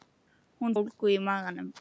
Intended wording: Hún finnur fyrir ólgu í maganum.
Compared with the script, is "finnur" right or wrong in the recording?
wrong